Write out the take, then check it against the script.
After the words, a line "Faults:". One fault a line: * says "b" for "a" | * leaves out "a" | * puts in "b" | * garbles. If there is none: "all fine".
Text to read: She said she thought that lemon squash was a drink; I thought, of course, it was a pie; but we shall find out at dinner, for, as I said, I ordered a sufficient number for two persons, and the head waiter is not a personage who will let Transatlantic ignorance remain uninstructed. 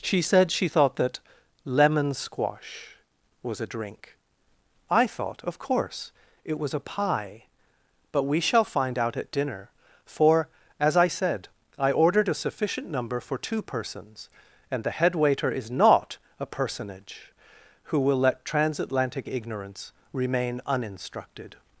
She said she thought that lemon squash was a drink; I thought, of course, it was a pie; but we shall find out at dinner, for, as I said, I ordered a sufficient number for two persons, and the head waiter is not a personage who will let Transatlantic ignorance remain uninstructed.
Faults:
all fine